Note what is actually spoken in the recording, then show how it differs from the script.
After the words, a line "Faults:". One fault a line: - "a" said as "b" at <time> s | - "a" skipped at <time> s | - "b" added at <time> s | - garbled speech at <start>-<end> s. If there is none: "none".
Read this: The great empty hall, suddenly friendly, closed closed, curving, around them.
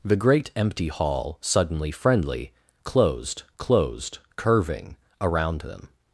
The great empty hall, suddenly friendly, closed closed, curving, around them.
Faults:
none